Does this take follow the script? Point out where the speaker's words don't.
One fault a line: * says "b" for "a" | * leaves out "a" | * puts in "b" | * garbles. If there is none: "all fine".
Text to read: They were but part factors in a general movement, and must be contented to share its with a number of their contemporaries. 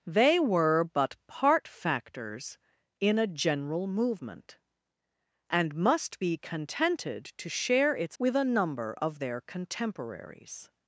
all fine